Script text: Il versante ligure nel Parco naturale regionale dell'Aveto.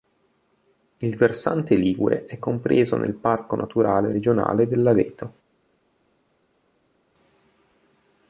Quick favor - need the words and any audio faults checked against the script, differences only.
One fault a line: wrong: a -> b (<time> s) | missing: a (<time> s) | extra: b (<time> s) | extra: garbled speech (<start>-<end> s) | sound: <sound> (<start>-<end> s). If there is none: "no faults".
extra: è compreso (2.2 s)